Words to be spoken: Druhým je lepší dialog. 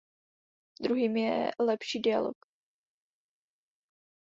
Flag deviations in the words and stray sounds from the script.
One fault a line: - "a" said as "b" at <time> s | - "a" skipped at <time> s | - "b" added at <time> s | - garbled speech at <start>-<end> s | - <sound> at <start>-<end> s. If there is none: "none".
none